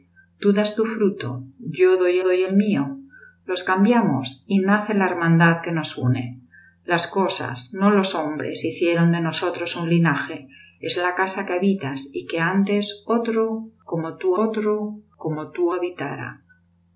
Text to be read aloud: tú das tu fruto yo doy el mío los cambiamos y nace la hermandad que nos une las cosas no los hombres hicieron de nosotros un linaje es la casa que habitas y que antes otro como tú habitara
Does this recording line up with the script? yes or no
no